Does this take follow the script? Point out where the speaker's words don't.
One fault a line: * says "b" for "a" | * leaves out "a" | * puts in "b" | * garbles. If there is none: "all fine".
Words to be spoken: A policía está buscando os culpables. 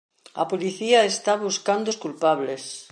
all fine